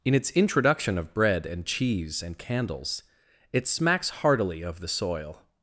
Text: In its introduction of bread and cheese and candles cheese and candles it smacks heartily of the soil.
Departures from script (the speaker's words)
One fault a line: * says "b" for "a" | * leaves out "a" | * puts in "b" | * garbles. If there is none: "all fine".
* leaves out "cheese and candles"